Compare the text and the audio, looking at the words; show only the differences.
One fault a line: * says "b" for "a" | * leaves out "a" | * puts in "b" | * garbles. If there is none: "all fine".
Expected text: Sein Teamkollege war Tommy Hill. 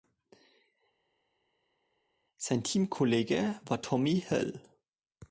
all fine